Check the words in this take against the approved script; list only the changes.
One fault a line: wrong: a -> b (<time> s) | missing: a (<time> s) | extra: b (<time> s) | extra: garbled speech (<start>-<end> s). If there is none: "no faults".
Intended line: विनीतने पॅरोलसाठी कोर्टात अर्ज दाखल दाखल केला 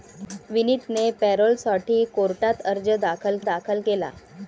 no faults